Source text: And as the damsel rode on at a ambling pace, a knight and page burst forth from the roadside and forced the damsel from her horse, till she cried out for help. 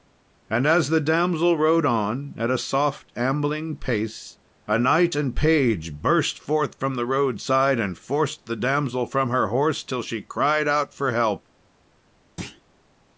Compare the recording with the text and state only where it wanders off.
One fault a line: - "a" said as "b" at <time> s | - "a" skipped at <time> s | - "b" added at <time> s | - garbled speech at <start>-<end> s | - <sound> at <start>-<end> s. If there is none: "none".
- "soft" added at 2.6 s
- thud at 12.4-12.6 s